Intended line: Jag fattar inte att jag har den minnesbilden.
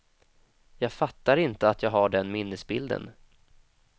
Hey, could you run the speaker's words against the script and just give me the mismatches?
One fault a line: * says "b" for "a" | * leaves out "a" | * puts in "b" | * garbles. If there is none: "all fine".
all fine